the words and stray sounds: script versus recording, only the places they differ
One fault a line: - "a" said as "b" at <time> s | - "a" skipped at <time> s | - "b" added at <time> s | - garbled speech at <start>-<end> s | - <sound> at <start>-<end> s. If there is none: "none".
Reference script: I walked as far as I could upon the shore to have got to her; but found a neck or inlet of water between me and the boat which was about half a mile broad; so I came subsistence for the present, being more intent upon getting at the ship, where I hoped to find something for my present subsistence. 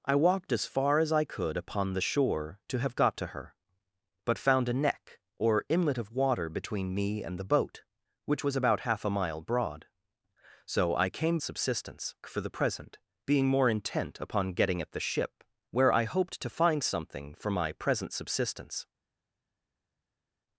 none